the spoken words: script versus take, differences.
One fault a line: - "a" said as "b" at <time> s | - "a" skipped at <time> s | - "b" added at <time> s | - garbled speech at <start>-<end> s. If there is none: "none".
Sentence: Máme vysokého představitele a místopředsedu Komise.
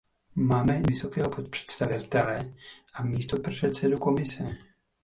none